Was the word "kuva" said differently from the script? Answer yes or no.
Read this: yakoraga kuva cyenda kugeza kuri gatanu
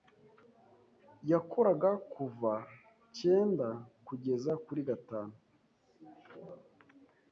no